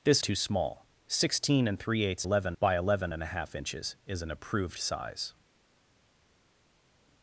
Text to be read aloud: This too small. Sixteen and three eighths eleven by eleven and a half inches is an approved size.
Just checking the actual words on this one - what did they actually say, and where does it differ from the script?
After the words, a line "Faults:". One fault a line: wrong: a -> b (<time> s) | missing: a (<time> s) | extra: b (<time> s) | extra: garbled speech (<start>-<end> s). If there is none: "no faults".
This too small. Sixteen and three eighths eleven by eleven and a half inches is an approved size.
Faults:
no faults